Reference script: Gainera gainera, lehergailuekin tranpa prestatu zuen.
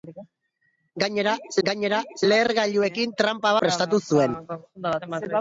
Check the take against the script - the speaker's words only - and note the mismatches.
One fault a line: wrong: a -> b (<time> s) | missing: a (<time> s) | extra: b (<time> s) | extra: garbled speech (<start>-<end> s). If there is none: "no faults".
no faults